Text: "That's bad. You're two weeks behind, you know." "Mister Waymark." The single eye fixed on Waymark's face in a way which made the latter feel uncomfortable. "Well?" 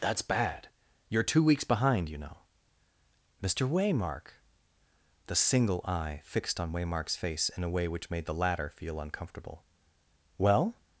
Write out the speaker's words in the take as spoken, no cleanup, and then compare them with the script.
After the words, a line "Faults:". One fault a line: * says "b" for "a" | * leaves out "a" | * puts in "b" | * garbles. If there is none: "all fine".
"That's bad. You're two weeks behind, you know." "Mister Waymark." The single eye fixed on Waymark's face in a way which made the latter feel uncomfortable. "Well?"
Faults:
all fine